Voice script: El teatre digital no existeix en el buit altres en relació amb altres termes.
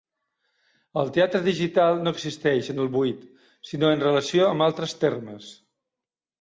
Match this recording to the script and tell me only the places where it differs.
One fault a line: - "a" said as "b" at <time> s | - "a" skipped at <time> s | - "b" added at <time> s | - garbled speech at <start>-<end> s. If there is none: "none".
- "altres" said as "sinó" at 3.7 s